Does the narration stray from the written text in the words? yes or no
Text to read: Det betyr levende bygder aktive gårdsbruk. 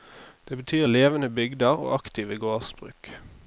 yes